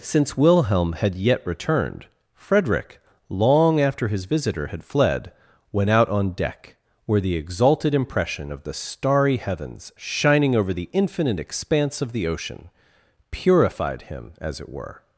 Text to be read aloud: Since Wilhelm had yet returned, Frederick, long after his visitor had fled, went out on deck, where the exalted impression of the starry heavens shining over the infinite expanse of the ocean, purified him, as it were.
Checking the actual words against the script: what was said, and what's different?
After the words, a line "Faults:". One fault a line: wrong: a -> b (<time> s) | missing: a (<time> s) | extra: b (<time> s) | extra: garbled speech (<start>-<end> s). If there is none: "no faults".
Since Wilhelm had yet returned, Frederick, long after his visitor had fled, went out on deck, where the exalted impression of the starry heavens shining over the infinite expanse of the ocean, purified him, as it were.
Faults:
no faults